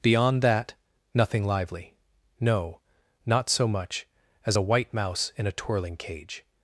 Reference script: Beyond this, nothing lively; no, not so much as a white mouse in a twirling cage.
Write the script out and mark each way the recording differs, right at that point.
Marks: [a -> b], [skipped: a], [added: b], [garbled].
Beyond [this, -> that] nothing lively; no, not so much as a white mouse in a twirling cage.